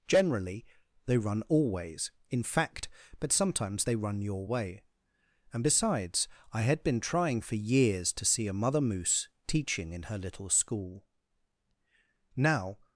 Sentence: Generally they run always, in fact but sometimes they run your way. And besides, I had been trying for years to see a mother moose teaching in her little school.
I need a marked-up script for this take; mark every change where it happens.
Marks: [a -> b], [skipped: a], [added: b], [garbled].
Generally they run always, in fact but sometimes they run your way. And besides, I had been trying for years to see a mother moose teaching in her little school. [added: Now]